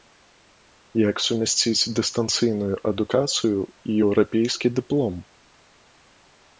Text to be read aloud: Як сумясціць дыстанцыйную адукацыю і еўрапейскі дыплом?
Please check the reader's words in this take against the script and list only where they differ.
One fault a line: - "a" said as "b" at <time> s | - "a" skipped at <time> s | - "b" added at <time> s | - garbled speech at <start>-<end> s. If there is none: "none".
none